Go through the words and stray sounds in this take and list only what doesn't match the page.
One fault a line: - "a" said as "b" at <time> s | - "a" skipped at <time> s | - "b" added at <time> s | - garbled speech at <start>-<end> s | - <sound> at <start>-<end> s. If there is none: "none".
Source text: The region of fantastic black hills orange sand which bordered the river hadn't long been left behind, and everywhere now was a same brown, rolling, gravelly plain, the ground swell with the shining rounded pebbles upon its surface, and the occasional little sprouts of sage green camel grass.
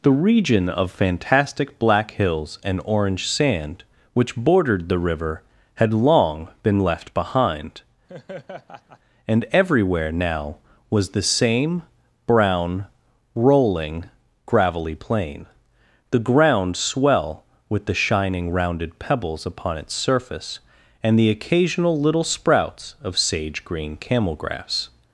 - "and" added at 2.6 s
- "hadn't" said as "had" at 5.8 s
- laugh at 8.1-9.0 s
- "a" said as "the" at 11.1 s